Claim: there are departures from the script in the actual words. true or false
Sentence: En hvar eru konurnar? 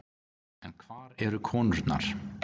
false